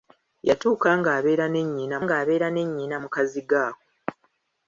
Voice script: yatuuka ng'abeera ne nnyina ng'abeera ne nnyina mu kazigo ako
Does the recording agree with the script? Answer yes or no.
yes